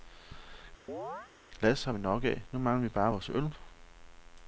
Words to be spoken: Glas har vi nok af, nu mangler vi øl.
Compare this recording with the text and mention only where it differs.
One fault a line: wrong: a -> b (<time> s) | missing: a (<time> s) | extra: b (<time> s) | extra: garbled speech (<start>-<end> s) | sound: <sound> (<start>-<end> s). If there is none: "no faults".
sound: chirp (0.9-1.3 s)
extra: bare vores (2.9 s)